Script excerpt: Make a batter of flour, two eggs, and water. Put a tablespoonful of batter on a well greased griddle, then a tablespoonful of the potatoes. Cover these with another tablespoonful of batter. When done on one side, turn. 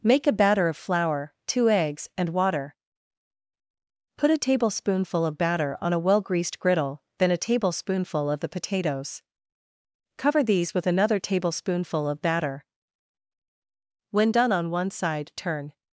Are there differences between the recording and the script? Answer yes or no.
no